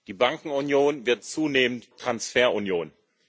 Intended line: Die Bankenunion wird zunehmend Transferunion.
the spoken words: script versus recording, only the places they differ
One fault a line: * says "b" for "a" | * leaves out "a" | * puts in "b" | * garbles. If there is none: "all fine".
all fine